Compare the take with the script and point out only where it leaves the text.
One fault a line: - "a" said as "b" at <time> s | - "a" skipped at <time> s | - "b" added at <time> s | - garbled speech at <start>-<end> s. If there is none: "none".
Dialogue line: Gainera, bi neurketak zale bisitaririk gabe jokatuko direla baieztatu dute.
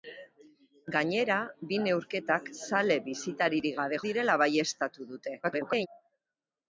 - "jokatuko" skipped at 4.0 s
- garbled speech at 5.4-5.9 s